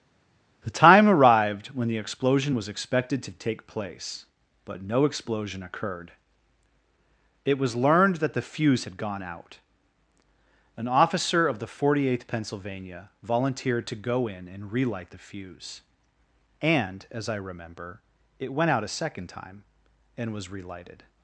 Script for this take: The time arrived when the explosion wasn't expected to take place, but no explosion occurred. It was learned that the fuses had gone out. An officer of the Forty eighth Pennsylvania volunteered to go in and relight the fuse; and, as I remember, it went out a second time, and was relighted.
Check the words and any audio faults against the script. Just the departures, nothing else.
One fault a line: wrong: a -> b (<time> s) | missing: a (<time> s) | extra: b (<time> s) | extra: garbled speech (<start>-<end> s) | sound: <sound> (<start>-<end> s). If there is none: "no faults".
wrong: wasn't -> was (2.5 s)
wrong: fuses -> fuse (8.4 s)